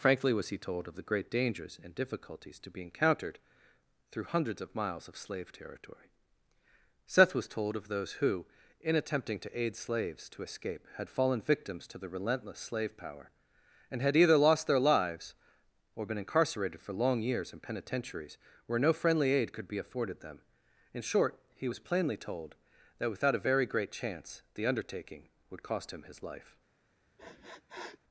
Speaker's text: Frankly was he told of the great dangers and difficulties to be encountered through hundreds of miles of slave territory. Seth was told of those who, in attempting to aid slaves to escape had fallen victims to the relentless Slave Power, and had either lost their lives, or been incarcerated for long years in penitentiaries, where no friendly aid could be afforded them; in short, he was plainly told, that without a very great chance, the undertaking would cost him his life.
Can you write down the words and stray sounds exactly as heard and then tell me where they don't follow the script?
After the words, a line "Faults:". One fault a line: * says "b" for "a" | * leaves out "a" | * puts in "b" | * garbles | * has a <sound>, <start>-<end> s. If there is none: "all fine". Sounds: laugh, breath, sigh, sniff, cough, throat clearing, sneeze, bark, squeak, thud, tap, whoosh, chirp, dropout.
Frankly was he told of the great dangers and difficulties to be encountered through hundreds of miles of slave territory. Seth was told of those who, in attempting to aid slaves to escape had fallen victims to the relentless Slave Power, and had either lost their lives, or been incarcerated for long years in penitentiaries, where no friendly aid could be afforded them; in short, he was plainly told, that without a very great chance, the undertaking would cost him his life.
Faults:
* has a sniff, 27.2-28.0 s